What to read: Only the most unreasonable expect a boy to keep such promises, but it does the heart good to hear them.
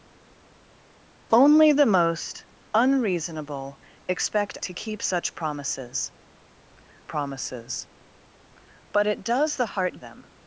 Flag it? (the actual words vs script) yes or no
yes